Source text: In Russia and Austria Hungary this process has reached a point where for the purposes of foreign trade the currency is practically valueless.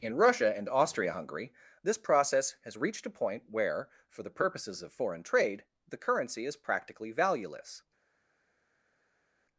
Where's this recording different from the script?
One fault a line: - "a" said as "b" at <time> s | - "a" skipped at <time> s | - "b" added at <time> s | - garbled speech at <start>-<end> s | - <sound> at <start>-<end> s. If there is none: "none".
none